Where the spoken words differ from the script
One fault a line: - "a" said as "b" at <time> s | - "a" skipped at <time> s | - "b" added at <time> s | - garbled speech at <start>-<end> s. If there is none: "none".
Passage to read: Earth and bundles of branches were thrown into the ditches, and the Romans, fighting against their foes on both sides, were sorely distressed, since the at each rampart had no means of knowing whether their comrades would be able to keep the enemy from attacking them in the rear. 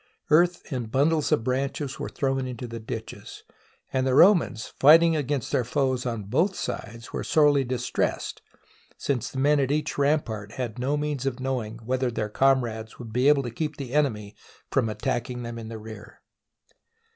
- "men" added at 9.4 s